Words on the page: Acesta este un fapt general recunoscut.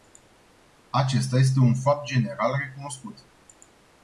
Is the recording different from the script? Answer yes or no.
no